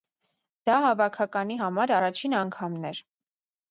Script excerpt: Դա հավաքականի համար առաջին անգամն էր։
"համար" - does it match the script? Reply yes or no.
yes